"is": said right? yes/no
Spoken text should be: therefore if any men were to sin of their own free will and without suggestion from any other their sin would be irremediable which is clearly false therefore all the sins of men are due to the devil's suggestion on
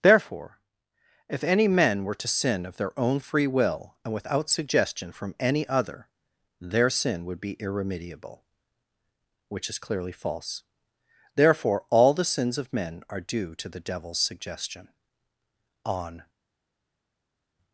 yes